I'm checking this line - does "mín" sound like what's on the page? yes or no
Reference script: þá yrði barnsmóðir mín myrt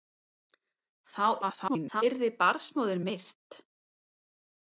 no